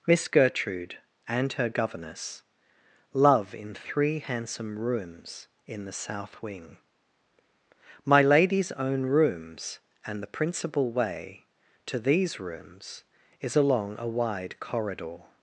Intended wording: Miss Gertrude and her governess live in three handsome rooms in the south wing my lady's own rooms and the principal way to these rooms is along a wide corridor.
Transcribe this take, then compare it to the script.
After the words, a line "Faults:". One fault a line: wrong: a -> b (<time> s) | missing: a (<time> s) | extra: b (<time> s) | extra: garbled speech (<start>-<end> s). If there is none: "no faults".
Miss Gertrude and her governess love in three handsome rooms in the south wing my lady's own rooms and the principal way to these rooms is along a wide corridor.
Faults:
wrong: live -> love (3.1 s)